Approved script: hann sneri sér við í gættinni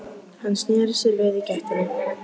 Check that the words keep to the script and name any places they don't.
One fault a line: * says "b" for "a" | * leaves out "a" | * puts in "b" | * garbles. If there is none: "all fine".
all fine